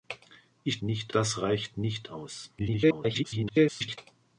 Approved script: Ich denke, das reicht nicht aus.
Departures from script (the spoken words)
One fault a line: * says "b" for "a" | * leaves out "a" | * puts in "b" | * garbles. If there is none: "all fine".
* says "nicht" for "denke"
* garbles